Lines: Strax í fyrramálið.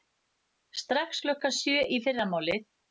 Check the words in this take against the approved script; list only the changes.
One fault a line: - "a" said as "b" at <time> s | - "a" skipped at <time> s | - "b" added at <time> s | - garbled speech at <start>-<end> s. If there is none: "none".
- "klukkan sjö" added at 1.3 s